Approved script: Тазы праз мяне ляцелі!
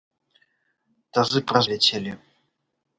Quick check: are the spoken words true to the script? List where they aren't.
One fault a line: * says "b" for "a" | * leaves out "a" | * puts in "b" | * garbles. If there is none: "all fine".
* leaves out "мяне"